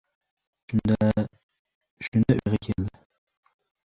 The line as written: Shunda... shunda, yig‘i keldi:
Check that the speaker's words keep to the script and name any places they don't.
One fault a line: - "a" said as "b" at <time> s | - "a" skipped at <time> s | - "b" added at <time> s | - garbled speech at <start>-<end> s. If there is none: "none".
none